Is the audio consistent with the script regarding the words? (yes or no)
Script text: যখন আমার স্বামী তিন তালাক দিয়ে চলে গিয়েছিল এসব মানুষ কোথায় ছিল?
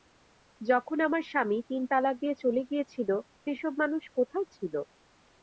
yes